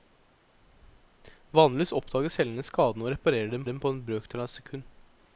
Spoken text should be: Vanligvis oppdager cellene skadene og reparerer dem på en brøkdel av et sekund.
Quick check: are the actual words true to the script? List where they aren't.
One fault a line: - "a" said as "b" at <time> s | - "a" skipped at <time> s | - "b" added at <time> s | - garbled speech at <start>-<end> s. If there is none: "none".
- "dem" added at 3.7 s